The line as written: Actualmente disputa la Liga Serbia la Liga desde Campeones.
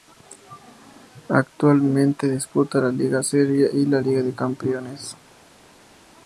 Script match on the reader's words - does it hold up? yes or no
no